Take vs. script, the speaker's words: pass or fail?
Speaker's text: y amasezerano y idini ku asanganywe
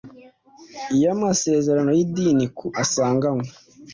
pass